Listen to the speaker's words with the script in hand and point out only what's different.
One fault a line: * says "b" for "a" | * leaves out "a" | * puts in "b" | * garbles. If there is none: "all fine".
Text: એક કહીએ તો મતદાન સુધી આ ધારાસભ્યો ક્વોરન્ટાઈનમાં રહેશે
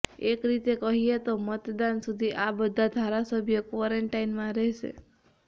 * puts in "રીતે"
* puts in "બધા"